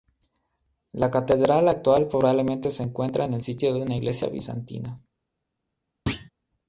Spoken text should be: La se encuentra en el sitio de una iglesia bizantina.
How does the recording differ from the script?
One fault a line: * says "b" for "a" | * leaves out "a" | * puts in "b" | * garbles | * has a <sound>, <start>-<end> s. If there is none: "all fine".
* puts in "catedral actual probablemente"
* has a thud, 6.1-6.3 s